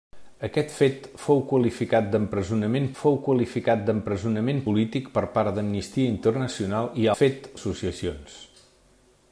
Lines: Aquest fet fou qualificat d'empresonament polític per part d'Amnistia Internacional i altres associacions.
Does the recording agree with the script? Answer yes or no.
no